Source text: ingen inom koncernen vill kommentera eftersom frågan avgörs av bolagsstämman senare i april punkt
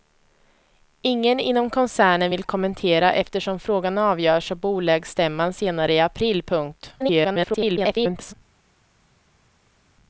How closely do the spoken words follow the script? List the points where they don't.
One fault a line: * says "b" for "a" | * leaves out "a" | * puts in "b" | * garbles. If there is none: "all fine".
* garbles